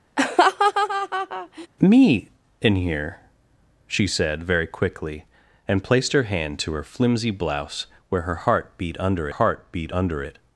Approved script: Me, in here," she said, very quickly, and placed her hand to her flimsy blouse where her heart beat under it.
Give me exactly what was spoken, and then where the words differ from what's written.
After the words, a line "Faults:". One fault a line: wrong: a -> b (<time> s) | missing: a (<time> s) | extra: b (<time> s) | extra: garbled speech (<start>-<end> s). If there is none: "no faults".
Me, in here," she said, very quickly, and placed her hand to her flimsy blouse where her heart beat under heart beat under it.
Faults:
extra: heart beat under (9.3 s)